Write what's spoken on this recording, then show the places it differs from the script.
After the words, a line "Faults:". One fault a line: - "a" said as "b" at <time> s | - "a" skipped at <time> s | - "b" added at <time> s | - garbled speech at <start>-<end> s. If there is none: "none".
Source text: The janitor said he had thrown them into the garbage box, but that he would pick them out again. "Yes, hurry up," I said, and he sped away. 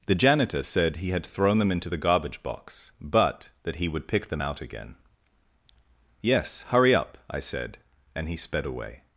The janitor said he had thrown them into the garbage box, but that he would pick them out again. "Yes, hurry up," I said, and he sped away.
Faults:
none